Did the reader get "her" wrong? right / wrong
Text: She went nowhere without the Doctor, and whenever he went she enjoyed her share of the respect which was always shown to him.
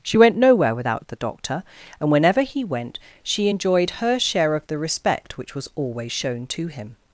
right